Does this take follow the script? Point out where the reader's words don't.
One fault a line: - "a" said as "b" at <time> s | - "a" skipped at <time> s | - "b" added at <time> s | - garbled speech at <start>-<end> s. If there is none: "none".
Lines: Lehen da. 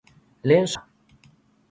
none